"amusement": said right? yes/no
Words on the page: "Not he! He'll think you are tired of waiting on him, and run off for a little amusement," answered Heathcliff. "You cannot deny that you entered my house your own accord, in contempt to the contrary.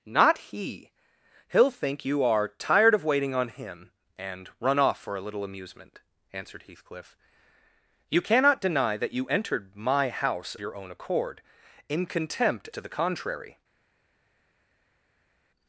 yes